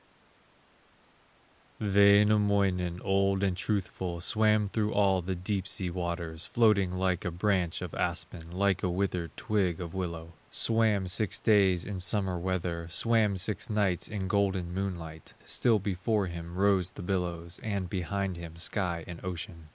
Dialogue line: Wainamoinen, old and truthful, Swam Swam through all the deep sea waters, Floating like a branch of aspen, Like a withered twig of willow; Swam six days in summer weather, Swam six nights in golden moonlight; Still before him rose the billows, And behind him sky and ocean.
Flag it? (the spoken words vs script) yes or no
yes